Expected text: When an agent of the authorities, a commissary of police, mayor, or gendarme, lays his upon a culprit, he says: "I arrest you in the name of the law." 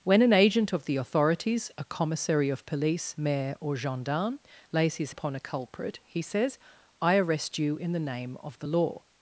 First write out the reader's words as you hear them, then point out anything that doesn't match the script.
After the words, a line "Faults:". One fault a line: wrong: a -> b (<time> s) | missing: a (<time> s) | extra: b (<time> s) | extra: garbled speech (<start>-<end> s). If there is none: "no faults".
When an agent of the authorities, a commissary of police, mayor, or gendarme, lays his upon a culprit, he says: "I arrest you in the name of the law."
Faults:
no faults